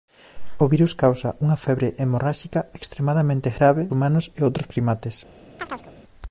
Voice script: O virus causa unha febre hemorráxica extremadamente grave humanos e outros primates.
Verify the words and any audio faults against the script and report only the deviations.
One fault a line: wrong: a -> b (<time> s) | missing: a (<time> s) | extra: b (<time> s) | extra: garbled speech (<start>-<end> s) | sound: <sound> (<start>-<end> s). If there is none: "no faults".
sound: chirp (5.6-5.9 s)